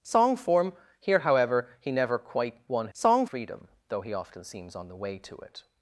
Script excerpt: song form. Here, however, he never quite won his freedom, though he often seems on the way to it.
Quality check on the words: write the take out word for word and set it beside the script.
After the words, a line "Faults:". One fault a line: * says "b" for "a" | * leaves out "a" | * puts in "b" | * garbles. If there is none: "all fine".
song form. Here, however, he never quite won song freedom, though he often seems on the way to it.
Faults:
* says "song" for "his"